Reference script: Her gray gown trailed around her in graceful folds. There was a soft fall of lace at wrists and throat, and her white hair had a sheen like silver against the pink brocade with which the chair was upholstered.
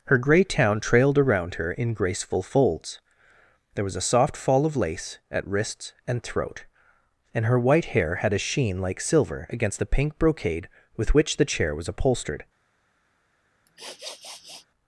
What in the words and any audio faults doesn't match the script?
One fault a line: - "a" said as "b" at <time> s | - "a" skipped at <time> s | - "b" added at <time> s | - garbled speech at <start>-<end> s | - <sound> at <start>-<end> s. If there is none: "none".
- "gown" said as "town" at 0.4 s
- sniff at 13.7-14.7 s